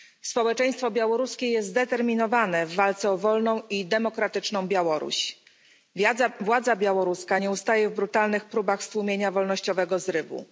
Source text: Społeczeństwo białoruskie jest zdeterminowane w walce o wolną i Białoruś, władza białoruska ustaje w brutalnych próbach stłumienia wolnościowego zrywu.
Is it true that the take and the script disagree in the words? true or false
true